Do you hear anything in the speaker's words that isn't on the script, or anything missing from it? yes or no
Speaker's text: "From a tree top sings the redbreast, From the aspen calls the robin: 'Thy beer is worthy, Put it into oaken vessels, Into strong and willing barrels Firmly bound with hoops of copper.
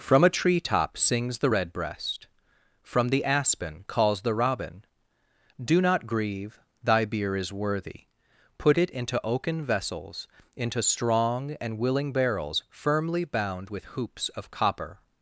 yes